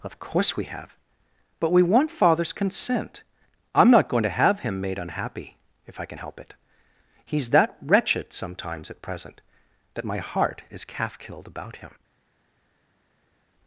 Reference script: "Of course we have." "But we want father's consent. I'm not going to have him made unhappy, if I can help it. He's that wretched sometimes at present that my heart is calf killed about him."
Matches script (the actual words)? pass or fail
pass